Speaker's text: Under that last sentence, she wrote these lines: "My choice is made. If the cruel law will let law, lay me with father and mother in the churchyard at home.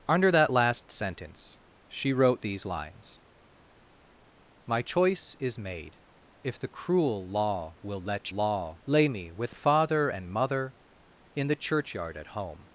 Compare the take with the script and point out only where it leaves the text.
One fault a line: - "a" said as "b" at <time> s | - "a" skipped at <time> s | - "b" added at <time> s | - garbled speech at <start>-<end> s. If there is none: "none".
none